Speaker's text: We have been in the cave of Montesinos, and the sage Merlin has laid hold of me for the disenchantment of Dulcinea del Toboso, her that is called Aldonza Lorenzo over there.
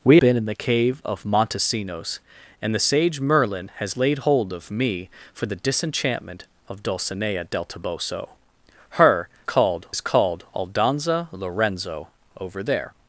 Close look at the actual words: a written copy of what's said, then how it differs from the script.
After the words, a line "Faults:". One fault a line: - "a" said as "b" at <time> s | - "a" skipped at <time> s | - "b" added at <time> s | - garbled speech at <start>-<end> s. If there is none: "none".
We been in the cave of Montesinos, and the sage Merlin has laid hold of me for the disenchantment of Dulcinea del Toboso, her called is called Aldonza Lorenzo over there.
Faults:
- "have" skipped at 0.2 s
- "that" said as "called" at 9.4 s